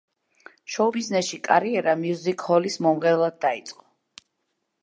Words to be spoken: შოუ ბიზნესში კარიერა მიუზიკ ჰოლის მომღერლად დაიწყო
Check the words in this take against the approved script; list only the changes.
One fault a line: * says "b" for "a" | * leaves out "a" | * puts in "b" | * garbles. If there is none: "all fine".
all fine